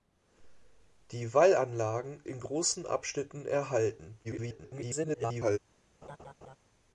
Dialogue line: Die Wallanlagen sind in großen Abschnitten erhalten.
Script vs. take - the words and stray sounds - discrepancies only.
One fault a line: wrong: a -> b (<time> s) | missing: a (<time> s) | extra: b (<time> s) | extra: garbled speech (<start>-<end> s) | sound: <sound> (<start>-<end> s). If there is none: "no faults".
missing: sind (2.2 s)
extra: garbled speech (4.2-5.6 s)
sound: laugh (6.0-6.6 s)